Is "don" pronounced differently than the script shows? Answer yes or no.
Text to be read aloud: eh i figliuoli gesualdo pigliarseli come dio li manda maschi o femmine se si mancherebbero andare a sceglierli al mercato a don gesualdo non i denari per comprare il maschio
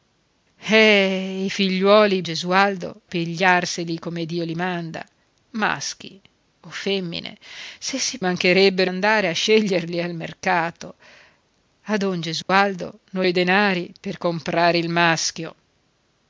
no